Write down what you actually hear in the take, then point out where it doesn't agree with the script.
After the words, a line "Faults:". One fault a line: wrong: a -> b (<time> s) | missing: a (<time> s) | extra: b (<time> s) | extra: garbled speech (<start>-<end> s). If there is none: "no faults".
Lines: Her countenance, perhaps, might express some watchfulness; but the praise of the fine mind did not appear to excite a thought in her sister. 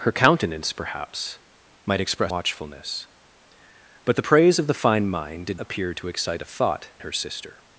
Her countenance, perhaps, might express watchfulness; but the praise of the fine mind did appear to excite a thought her sister.
Faults:
missing: some (2.3 s)
missing: not (5.6 s)
missing: in (6.9 s)